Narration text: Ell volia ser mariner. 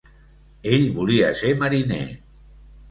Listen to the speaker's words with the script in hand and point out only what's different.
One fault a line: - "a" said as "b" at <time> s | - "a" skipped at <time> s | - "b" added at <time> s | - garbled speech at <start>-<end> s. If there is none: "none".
none